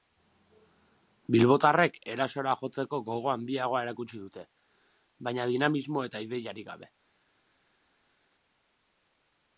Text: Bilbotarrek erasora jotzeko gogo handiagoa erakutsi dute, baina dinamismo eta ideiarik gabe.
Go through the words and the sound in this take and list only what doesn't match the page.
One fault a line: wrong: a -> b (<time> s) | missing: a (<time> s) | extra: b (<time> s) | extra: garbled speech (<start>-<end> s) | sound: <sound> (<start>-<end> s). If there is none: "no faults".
no faults